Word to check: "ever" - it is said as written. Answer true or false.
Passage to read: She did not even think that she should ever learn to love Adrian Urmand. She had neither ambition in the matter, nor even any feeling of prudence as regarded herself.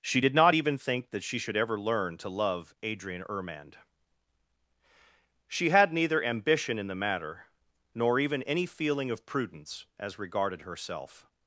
true